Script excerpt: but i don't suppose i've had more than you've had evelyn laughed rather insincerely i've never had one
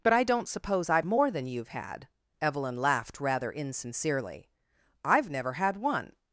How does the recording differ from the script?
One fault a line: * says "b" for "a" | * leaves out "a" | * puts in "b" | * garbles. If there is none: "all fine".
* leaves out "had"